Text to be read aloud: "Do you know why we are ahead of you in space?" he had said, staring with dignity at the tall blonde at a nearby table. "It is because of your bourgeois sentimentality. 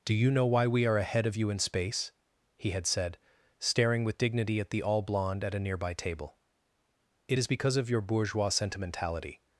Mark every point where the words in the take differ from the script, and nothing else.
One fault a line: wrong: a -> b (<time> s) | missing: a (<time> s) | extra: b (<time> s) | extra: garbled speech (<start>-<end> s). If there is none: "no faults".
wrong: tall -> all (4.8 s)